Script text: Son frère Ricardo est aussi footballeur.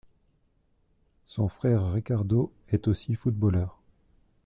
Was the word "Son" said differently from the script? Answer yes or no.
no